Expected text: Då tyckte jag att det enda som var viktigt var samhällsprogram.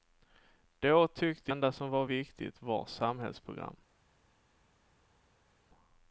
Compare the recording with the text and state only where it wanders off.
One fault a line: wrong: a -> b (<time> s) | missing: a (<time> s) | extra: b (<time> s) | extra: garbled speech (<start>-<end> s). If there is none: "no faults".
missing: jag att det (1.5 s)